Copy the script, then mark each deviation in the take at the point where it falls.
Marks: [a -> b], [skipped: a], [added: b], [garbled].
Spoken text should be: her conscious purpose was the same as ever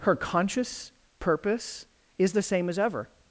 her conscious purpose [was -> is] the same as ever